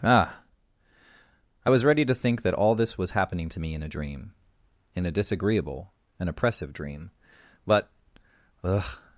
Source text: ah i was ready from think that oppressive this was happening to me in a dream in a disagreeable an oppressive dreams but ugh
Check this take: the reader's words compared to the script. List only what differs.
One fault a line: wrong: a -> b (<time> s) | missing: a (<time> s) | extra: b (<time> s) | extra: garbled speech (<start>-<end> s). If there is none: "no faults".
wrong: from -> to (2.0 s)
wrong: oppressive -> all (2.5 s)
wrong: dreams -> dream (6.7 s)